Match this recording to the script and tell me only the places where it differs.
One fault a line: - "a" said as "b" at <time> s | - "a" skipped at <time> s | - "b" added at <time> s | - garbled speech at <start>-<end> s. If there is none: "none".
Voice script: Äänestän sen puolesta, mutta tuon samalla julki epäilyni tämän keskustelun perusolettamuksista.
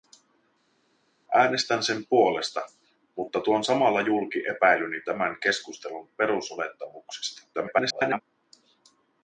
- garbled speech at 7.5-8.2 s